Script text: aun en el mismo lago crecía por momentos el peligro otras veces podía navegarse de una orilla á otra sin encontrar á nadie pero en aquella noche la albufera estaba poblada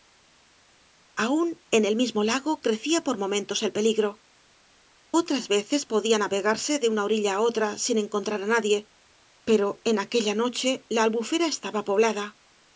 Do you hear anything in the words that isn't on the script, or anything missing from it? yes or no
no